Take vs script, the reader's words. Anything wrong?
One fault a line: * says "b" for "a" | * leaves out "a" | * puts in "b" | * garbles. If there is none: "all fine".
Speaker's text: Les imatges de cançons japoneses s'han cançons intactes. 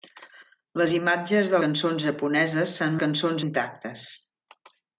all fine